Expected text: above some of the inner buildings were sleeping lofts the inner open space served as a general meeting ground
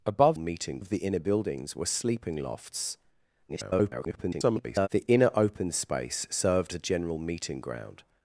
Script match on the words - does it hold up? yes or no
no